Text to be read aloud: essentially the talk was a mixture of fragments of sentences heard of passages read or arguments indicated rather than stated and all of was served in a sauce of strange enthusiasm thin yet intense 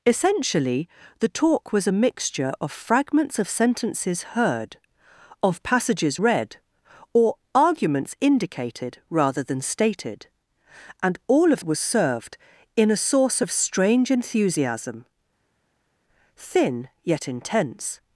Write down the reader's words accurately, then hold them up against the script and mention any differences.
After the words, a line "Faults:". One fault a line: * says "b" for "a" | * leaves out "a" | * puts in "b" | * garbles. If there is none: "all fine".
essentially the talk was a mixture of fragments of sentences heard of passages read or arguments indicated rather than stated and all of was served in a sauce of strange enthusiasm thin yet intense
Faults:
all fine